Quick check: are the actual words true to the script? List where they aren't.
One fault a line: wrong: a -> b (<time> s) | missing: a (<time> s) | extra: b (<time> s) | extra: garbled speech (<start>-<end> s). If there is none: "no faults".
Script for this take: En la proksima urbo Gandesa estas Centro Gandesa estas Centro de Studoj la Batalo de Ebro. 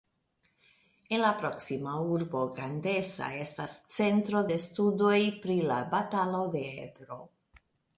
missing: Gandesa estas Centro (4.4 s)
extra: pri (5.5 s)